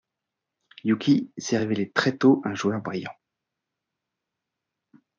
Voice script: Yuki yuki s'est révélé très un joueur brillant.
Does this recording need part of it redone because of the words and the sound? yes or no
yes